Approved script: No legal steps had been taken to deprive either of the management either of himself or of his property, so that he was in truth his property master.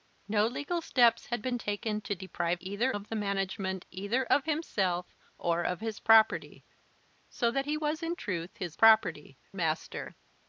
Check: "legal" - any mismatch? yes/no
no